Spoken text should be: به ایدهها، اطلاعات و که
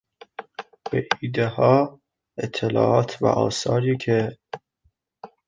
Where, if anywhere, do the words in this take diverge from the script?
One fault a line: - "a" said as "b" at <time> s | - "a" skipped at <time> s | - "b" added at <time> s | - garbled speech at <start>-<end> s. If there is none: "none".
- "آثاری" added at 3.2 s